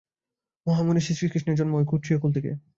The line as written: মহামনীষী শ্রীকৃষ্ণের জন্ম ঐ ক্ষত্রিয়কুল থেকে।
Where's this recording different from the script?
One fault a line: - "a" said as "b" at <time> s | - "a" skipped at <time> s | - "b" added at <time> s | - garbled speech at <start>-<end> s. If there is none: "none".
none